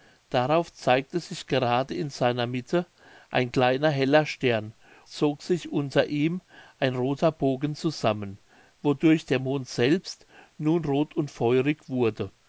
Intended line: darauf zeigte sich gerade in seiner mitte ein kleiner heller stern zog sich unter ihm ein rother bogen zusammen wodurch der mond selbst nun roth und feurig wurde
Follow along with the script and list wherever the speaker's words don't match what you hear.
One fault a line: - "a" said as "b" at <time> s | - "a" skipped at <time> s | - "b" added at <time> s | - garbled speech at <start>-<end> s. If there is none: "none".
none